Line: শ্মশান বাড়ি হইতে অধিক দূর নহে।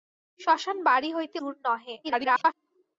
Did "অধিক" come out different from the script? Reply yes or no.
yes